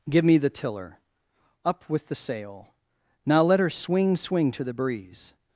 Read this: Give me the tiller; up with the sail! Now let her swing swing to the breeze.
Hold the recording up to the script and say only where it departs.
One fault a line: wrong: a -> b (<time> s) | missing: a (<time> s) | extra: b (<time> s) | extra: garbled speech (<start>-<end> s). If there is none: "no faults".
no faults